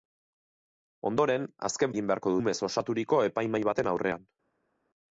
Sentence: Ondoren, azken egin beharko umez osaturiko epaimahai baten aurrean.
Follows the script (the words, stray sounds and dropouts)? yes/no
yes